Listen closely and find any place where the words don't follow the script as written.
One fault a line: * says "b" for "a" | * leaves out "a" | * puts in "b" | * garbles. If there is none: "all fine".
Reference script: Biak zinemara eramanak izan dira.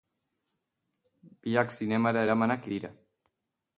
* leaves out "izan"